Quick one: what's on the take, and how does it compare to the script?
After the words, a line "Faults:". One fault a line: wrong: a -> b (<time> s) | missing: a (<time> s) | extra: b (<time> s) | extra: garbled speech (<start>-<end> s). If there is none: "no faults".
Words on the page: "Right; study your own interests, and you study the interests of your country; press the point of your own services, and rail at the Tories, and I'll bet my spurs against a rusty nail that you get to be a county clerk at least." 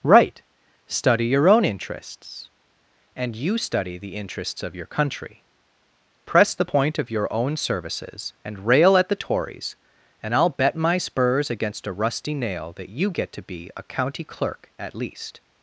"Right; study your own interests, and you study the interests of your country; press the point of your own services, and rail at the Tories, and I'll bet my spurs against a rusty nail that you get to be a county clerk at least."
Faults:
no faults